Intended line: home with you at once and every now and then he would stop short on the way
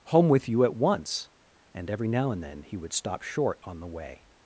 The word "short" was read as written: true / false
true